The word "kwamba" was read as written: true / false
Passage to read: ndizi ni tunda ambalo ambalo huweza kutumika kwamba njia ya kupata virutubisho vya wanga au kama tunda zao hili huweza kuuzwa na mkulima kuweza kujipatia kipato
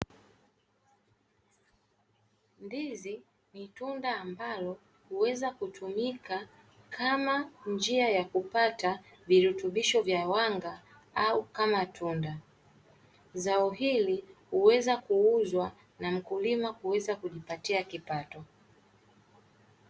false